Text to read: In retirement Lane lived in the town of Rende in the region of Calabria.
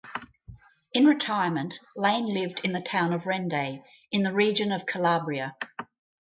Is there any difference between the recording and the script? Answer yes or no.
no